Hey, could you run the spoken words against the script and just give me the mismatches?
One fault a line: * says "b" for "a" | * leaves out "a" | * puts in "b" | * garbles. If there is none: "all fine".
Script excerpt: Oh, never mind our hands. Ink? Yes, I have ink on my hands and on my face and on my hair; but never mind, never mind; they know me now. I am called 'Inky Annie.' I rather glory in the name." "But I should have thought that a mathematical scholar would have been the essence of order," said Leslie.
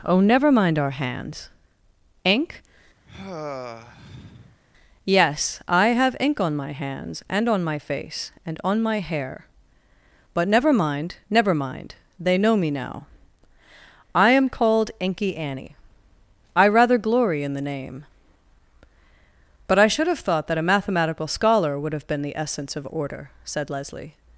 all fine